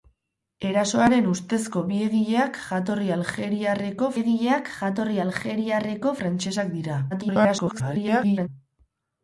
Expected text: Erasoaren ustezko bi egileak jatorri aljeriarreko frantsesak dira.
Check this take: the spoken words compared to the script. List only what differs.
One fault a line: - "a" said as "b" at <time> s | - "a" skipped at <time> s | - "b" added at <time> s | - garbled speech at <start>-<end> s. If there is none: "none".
- "egileak jatorri aljeriarreko" added at 4.2 s
- garbled speech at 7.1-8.5 s